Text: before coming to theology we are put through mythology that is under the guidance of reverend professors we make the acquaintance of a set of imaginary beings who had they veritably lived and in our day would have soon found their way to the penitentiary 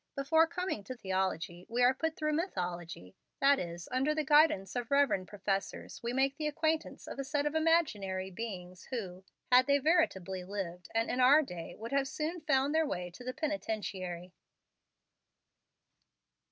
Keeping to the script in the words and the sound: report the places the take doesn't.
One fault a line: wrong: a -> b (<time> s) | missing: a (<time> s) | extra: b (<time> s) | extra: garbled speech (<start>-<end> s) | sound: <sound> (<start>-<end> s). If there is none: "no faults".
no faults